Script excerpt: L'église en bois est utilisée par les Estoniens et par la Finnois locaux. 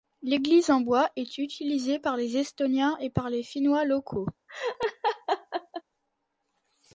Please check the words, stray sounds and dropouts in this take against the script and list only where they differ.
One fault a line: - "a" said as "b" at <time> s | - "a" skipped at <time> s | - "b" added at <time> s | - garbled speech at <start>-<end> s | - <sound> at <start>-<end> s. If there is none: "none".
- "la" said as "les" at 3.3 s
- laugh at 4.5-5.8 s